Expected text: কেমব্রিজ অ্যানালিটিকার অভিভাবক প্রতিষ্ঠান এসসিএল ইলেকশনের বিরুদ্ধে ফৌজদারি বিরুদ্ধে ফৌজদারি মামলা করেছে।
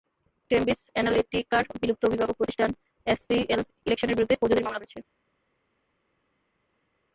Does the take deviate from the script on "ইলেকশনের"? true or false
false